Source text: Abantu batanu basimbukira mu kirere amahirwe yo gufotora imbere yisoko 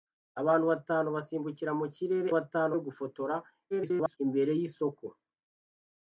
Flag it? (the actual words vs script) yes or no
yes